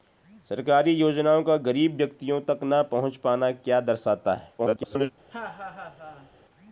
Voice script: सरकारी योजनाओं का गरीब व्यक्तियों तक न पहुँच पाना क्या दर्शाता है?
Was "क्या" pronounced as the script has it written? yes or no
yes